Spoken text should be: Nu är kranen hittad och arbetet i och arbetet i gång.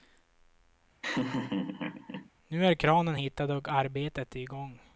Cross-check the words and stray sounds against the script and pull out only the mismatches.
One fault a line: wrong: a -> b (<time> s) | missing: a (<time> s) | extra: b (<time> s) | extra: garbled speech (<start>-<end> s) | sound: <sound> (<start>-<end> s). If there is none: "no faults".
sound: laugh (1.0-2.3 s)
missing: och arbetet i (4.5 s)